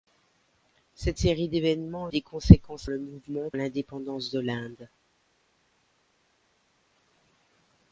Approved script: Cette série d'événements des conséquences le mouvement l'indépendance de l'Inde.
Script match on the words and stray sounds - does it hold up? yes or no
yes